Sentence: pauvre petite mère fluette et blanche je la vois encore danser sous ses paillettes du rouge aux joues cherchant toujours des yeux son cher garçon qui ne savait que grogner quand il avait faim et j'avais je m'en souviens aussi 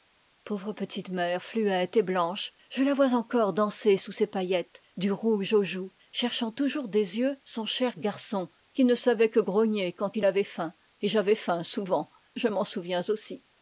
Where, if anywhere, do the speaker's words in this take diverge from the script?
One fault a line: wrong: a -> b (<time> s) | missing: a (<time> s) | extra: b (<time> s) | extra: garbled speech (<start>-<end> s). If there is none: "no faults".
extra: faim souvent (11.3 s)